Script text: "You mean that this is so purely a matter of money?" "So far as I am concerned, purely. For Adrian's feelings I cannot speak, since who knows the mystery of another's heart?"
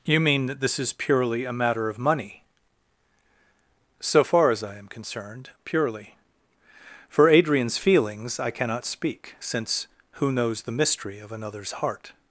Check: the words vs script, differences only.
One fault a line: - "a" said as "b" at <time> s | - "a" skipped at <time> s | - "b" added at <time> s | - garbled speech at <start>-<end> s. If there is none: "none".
- "so" skipped at 0.9 s